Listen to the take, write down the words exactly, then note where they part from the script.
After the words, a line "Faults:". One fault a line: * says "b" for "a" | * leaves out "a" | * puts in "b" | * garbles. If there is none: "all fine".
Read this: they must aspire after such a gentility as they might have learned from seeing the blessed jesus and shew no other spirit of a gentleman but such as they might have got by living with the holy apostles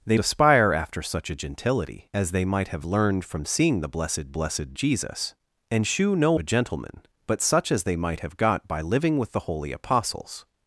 they aspire after such a gentility as they might have learned from seeing the blessed blessed jesus and shew no a gentleman but such as they might have got by living with the holy apostles
Faults:
* leaves out "must"
* puts in "blessed"
* leaves out "other spirit of"